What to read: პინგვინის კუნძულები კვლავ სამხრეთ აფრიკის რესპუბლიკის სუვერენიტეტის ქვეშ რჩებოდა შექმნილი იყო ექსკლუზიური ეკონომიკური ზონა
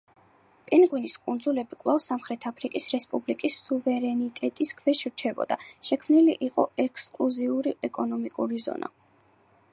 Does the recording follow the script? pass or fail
pass